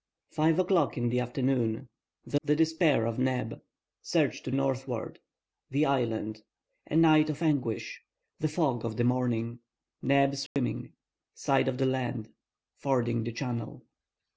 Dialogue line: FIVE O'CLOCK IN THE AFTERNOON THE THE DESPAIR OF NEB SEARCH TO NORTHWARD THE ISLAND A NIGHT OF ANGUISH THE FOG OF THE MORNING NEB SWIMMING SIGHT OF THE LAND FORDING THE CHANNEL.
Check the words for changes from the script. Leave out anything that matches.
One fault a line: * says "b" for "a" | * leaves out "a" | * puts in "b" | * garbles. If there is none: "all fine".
all fine